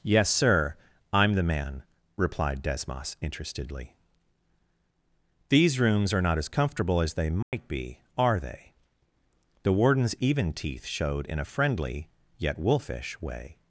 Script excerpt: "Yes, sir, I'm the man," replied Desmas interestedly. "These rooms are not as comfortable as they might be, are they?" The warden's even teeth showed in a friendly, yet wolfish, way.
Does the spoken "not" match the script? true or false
true